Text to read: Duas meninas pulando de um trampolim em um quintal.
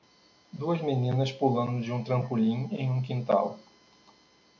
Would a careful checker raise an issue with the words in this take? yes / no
no